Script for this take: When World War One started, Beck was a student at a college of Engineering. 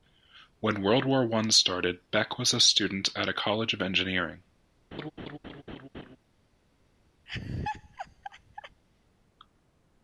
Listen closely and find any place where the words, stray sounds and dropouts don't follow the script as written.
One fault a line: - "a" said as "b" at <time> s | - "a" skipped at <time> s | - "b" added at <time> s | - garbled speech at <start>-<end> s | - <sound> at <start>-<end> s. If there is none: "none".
- laugh at 4.9-6.2 s
- laugh at 7.3-8.8 s